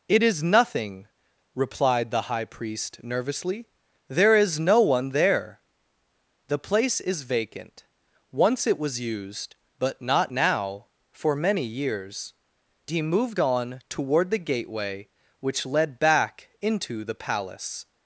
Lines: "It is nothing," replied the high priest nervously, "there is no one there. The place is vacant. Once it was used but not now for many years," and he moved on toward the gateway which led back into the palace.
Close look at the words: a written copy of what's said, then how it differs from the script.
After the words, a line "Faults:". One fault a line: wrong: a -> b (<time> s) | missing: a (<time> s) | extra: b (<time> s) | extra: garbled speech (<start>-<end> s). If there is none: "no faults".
"It is nothing," replied the high priest nervously, "there is no one there. The place is vacant. Once it was used but not now for many years," he moved on toward the gateway which led back into the palace.
Faults:
missing: and (12.3 s)